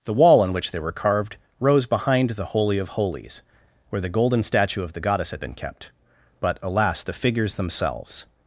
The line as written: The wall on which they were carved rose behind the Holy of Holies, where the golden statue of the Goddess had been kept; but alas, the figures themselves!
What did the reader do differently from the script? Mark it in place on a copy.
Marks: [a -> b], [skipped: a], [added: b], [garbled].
The wall on which they were carved rose behind the Holy of Holies, where the golden statue of the Goddess had been kept; but alas, the figures themselves!